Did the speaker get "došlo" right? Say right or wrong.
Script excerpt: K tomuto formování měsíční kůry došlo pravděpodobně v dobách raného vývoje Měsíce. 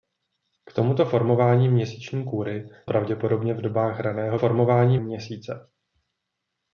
wrong